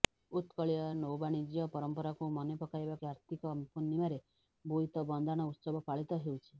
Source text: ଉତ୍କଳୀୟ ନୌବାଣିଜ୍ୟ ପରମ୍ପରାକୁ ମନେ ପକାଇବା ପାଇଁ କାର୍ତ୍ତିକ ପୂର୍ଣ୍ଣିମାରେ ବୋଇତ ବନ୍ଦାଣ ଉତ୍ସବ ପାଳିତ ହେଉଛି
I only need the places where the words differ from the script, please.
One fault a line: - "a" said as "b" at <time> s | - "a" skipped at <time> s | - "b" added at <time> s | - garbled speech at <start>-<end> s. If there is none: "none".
- "ପାଇଁ" skipped at 3.0 s